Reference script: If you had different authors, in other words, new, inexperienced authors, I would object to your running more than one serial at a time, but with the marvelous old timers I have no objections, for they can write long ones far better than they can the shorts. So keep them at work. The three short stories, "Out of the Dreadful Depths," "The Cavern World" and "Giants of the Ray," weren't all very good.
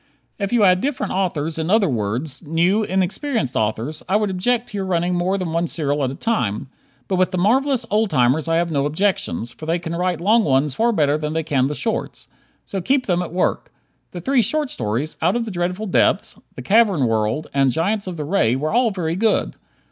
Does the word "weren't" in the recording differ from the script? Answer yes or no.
yes